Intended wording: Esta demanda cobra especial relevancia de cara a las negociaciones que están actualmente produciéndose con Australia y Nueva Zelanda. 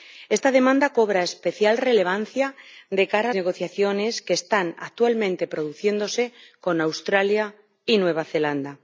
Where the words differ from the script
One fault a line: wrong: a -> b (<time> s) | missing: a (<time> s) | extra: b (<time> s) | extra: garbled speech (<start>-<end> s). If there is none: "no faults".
missing: las (3.4 s)